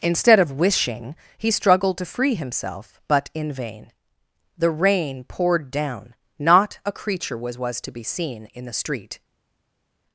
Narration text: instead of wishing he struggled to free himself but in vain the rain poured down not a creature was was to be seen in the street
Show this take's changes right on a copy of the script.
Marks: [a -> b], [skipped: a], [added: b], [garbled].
instead of wishing he struggled to free himself but in vain the rain poured down not a creature was was to be seen in the street